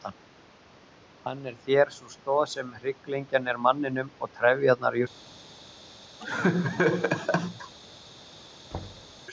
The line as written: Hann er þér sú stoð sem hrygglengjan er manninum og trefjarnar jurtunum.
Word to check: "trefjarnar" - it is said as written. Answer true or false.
true